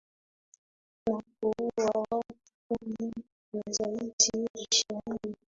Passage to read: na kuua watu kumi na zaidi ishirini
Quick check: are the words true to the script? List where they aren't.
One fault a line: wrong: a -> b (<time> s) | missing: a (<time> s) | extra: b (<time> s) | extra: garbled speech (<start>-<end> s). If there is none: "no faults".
no faults